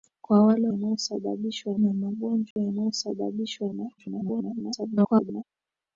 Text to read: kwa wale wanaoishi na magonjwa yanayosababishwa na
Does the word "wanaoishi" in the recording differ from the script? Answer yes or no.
yes